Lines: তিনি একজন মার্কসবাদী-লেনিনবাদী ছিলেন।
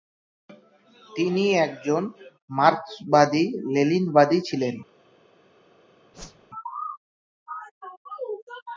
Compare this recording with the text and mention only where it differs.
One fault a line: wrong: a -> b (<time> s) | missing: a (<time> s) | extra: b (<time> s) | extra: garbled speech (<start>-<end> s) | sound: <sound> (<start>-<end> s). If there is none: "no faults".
sound: whoosh (6.1-6.5 s)